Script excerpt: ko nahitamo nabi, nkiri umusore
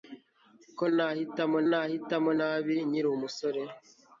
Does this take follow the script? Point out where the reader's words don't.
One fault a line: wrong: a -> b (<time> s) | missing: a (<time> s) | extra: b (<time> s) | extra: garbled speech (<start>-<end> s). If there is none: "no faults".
extra: nahitamo (1.7 s)